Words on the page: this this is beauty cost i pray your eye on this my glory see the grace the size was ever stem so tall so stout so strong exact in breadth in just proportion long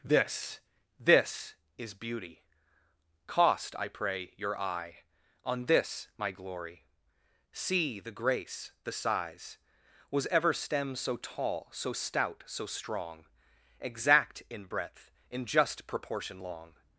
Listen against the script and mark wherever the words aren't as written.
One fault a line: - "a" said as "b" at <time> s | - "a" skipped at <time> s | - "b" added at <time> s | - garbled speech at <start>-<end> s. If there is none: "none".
none